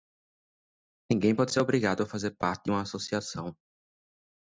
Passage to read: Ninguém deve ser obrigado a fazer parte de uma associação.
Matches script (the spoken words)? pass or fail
fail